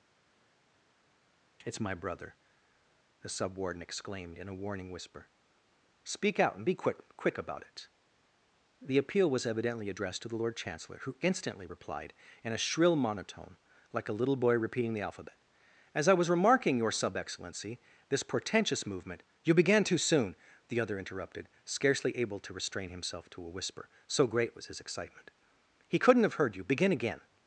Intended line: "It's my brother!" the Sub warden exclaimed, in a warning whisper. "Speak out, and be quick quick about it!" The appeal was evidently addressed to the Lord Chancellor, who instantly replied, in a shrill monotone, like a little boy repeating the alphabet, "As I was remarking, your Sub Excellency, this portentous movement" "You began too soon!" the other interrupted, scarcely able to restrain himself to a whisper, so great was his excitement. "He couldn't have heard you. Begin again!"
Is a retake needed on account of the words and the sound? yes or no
no